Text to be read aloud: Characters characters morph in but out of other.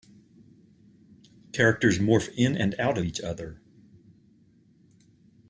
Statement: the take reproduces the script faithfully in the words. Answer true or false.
false